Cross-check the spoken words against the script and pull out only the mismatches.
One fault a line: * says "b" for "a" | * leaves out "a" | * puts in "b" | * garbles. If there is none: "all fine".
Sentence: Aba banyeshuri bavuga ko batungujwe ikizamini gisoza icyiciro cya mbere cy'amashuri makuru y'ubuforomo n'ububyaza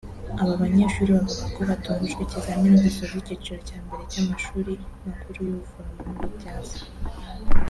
all fine